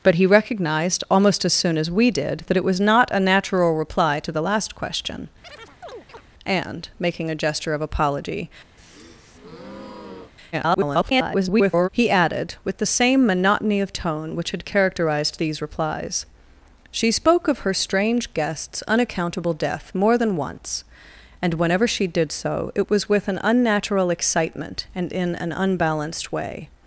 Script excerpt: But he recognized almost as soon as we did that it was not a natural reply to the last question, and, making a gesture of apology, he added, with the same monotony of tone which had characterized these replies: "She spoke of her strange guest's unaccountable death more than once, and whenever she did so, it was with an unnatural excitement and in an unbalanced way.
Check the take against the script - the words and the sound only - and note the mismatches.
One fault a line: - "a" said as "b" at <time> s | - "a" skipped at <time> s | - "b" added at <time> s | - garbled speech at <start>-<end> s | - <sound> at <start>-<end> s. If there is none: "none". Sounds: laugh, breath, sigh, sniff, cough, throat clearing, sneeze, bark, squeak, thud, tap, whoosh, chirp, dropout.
- chirp at 5.4-6.2 s
- breath at 8.8-10.3 s
- garbled speech at 10.5-11.9 s